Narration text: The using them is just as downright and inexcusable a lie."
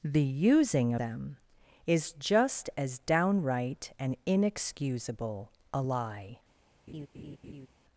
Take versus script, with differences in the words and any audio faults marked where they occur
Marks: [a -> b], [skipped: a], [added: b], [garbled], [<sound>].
The using them is just as downright and inexcusable a lie." [laugh]